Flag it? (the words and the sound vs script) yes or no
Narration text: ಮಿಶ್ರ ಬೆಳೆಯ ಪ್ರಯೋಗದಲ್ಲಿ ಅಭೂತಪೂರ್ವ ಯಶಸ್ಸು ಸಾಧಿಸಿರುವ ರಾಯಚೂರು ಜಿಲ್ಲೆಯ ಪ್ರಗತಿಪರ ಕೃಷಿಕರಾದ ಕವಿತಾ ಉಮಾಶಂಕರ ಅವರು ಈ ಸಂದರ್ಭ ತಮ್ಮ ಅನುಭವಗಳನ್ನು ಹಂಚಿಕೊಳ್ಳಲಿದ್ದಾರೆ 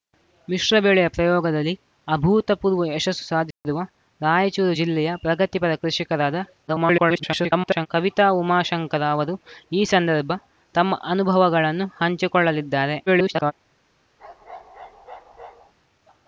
yes